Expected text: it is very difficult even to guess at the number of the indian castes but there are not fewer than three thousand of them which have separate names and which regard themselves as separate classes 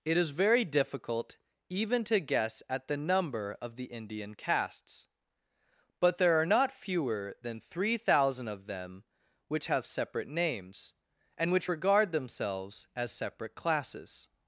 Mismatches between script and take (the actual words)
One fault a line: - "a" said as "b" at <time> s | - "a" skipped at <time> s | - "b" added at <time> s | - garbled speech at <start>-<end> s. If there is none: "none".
none